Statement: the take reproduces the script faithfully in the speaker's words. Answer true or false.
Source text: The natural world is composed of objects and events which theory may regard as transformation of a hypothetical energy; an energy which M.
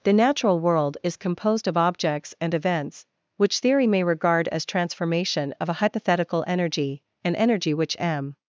true